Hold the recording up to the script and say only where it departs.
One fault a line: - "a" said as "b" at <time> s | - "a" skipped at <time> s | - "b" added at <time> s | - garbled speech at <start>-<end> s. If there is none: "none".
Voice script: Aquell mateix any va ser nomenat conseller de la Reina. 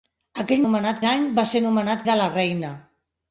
- "mateix" said as "nomenat" at 0.6 s
- "conseller" skipped at 2.1 s